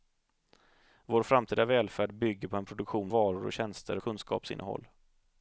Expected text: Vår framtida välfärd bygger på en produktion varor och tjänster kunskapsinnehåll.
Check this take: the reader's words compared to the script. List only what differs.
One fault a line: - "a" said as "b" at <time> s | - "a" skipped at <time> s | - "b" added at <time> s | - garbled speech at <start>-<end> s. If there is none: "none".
none